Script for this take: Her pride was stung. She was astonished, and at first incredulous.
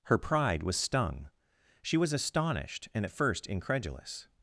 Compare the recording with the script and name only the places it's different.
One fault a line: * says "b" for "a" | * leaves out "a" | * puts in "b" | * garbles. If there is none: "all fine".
all fine